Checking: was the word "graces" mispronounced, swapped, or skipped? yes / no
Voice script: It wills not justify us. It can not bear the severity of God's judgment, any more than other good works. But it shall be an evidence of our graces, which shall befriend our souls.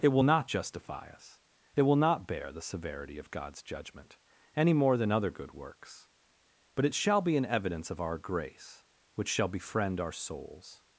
yes